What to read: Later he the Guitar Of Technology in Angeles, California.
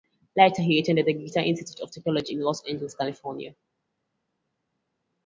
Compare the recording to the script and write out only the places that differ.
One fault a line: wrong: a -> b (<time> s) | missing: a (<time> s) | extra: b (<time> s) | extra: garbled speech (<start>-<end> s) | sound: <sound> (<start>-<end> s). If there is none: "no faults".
extra: attended (0.8 s)
extra: Institute (1.4 s)
extra: Los (2.4 s)